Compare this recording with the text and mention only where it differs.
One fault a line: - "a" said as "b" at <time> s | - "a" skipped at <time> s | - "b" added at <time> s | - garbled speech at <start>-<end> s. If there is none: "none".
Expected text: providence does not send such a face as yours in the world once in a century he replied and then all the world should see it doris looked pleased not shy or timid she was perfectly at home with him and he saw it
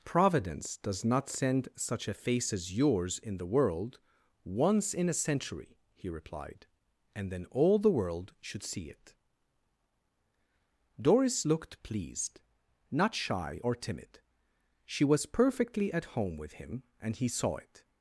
none